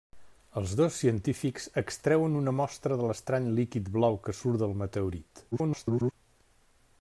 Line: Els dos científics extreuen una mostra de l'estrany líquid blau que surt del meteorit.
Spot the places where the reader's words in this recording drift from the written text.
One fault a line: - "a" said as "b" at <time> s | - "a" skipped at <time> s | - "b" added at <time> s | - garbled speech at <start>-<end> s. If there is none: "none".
- garbled speech at 5.5-6.1 s